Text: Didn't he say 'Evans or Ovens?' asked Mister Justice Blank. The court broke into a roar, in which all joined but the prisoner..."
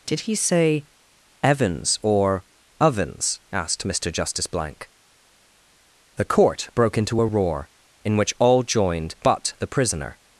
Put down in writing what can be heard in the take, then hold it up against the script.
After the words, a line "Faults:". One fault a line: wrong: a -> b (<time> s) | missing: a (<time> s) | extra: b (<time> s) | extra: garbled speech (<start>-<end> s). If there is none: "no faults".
Did he say 'Evans or Ovens?' asked Mister Justice Blank. The court broke into a roar, in which all joined but the prisoner..."
Faults:
wrong: Didn't -> Did (0.1 s)